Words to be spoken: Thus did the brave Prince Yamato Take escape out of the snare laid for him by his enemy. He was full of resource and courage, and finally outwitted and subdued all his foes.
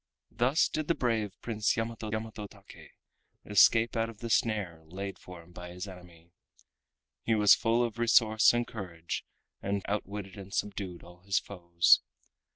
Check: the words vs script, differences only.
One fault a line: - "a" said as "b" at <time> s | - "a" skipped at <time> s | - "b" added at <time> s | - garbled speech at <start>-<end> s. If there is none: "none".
- "Yamato" added at 2.1 s
- "finally" skipped at 9.8 s